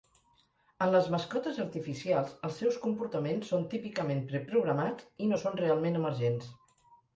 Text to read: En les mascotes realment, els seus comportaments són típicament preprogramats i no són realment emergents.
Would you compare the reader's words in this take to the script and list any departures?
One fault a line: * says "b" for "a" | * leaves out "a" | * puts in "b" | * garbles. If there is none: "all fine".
* says "artificials" for "realment"